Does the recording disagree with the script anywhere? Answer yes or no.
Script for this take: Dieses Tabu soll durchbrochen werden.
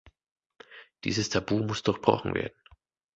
yes